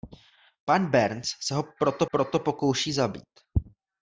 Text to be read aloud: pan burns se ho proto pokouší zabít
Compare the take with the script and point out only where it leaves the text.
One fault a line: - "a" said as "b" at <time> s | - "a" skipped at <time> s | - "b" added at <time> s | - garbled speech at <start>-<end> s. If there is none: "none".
- "proto" added at 2.1 s